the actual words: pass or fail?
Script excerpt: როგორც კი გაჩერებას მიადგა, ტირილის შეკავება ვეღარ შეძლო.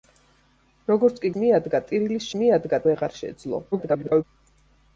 fail